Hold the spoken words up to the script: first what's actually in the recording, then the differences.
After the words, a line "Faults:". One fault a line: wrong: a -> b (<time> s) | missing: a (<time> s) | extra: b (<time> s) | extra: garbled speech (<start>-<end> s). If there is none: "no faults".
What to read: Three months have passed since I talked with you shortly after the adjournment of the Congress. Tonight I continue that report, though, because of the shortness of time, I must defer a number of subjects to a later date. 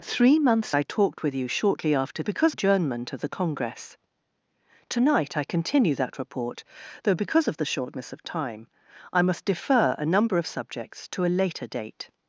Three months I talked with you shortly after because adjournment of the Congress. Tonight I continue that report, though, because of the shortness of time, I must defer a number of subjects to a later date.
Faults:
missing: have passed since (0.7 s)
wrong: the -> because (2.2 s)